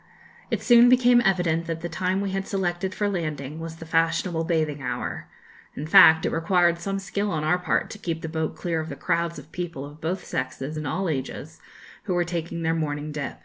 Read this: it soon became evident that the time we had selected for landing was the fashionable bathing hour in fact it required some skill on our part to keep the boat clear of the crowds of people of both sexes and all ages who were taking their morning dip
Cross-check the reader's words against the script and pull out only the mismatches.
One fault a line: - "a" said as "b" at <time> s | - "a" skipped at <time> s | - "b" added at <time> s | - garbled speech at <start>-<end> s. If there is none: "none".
none